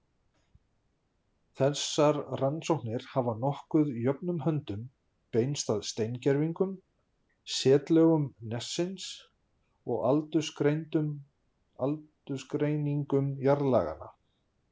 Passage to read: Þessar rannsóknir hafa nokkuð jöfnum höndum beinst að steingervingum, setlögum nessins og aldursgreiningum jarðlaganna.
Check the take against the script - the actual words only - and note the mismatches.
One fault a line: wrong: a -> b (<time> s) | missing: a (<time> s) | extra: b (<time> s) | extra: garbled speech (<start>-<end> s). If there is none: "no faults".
no faults